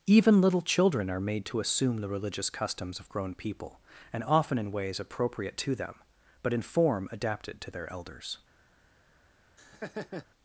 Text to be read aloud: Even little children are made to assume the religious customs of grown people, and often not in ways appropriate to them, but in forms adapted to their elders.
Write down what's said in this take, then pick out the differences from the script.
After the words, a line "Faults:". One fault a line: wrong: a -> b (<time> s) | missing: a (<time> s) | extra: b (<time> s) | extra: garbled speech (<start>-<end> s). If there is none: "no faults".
Even little children are made to assume the religious customs of grown people, and often in ways appropriate to them, but in form adapted to their elders.
Faults:
missing: not (4.6 s)
wrong: forms -> form (6.6 s)